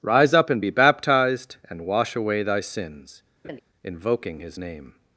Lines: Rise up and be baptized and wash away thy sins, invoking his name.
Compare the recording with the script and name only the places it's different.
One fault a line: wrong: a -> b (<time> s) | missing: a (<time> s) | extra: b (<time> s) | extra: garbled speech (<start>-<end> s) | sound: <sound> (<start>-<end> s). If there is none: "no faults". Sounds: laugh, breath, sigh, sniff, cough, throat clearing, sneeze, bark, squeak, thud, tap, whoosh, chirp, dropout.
sound: laugh (3.4-3.6 s)